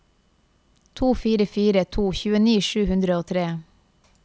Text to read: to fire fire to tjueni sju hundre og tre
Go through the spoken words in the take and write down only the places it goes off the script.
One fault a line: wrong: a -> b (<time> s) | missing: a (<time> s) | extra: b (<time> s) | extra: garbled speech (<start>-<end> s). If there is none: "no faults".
no faults